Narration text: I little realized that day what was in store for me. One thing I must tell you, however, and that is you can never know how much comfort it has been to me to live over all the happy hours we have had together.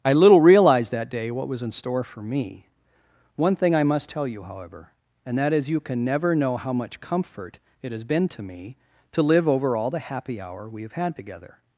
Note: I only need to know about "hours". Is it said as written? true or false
false